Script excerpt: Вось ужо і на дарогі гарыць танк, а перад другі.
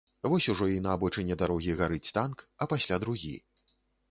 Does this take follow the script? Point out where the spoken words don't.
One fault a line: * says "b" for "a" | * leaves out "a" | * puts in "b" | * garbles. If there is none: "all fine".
* puts in "абочыне"
* says "пасля" for "перад"